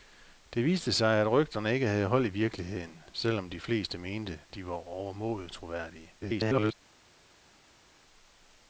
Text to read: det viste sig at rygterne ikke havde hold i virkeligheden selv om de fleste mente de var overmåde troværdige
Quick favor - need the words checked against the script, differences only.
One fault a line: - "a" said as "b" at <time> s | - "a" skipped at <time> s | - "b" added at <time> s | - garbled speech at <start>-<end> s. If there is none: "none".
- garbled speech at 6.2-6.7 s